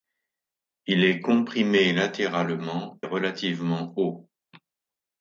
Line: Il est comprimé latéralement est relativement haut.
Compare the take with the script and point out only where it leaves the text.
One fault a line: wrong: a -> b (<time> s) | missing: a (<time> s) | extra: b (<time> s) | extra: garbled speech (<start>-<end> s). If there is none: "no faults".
no faults